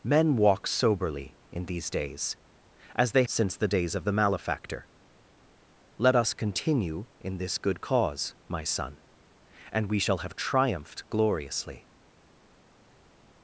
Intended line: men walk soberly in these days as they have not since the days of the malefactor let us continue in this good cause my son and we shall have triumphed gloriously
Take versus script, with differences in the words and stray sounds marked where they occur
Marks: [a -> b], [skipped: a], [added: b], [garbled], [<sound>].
men walk soberly in these days as they [skipped: have not] since the days of the malefactor let us continue in this good cause my son and we shall have triumphed gloriously